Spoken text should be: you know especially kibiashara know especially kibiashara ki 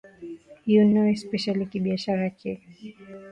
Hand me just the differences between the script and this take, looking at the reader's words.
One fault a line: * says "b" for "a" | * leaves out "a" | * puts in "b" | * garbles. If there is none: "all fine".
* leaves out "know especially kibiashara"